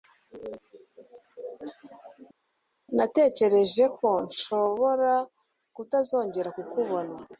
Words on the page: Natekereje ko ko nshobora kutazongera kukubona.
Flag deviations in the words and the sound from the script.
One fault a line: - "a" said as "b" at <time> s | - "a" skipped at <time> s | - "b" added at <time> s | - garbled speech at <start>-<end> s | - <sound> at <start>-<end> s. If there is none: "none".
- "ko" skipped at 4.1 s